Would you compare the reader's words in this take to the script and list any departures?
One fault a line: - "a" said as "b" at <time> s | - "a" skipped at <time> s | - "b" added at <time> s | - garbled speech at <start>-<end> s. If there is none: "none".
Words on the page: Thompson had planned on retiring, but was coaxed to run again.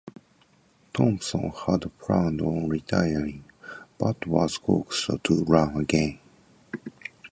none